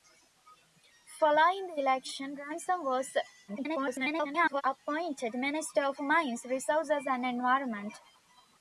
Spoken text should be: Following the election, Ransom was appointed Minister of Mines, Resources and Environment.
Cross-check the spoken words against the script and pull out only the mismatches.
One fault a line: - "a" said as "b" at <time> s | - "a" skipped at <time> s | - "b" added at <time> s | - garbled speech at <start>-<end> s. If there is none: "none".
- garbled speech at 3.5-4.6 s